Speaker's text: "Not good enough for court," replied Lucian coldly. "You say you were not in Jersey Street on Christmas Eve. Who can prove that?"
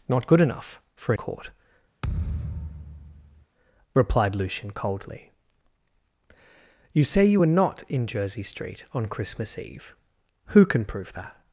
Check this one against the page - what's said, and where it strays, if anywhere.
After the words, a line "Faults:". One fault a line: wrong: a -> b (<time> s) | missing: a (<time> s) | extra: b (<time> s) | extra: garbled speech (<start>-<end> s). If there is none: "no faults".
"Not good enough for court," replied Lucian coldly. "You say you were not in Jersey Street on Christmas Eve. Who can prove that?"
Faults:
no faults